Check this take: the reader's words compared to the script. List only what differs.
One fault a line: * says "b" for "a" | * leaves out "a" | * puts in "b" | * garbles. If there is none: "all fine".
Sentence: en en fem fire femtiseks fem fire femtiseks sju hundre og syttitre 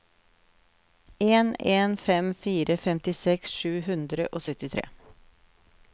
* leaves out "fem fire femtiseks"